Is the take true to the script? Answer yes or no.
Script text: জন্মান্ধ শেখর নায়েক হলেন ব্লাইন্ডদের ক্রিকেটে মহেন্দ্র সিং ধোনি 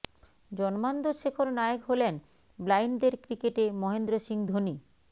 yes